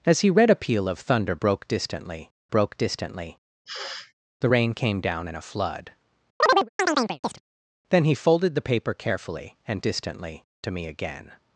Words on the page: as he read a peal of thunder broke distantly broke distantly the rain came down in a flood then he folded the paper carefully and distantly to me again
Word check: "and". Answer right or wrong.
right